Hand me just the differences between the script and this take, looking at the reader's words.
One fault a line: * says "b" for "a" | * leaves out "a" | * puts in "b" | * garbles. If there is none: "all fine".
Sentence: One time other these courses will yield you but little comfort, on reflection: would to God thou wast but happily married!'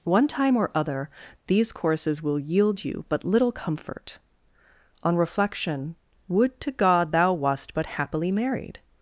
* puts in "or"